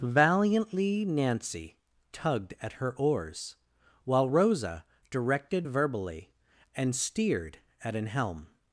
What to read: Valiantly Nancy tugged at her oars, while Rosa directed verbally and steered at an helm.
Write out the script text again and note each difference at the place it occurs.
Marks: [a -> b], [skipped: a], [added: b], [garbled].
Valiantly Nancy tugged at her oars, while Rosa directed verbally and steered at an helm.